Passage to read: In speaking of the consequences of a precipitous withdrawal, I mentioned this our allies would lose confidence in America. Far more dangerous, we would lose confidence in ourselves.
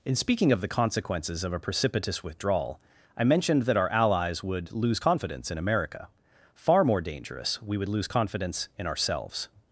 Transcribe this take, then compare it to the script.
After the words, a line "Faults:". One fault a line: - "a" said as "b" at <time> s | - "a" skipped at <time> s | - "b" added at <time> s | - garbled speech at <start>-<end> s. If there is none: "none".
In speaking of the consequences of a precipitous withdrawal, I mentioned that our allies would lose confidence in America. Far more dangerous, we would lose confidence in ourselves.
Faults:
- "this" said as "that" at 3.6 s